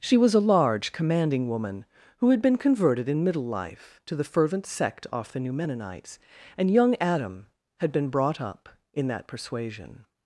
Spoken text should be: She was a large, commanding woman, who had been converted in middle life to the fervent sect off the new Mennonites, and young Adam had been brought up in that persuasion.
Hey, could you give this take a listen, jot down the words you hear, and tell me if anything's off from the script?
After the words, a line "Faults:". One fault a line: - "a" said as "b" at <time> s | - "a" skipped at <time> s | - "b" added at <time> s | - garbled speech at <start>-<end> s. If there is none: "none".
She was a large, commanding woman, who had been converted in middle life to the fervent sect off the new Mennonites, and young Adam had been brought up in that persuasion.
Faults:
none